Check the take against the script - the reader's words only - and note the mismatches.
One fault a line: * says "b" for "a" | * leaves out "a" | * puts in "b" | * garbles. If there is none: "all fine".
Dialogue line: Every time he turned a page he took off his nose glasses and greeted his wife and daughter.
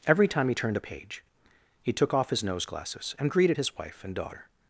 all fine